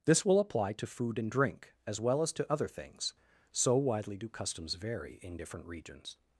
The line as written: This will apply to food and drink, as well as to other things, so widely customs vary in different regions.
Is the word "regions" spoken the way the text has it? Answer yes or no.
yes